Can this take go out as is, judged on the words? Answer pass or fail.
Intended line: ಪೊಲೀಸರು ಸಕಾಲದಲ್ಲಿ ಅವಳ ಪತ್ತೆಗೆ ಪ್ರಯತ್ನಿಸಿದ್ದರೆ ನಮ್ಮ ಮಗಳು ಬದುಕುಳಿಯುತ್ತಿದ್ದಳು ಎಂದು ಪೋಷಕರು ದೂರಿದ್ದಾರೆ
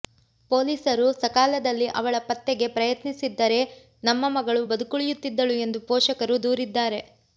pass